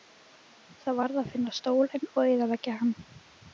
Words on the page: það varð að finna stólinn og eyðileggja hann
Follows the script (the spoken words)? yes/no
yes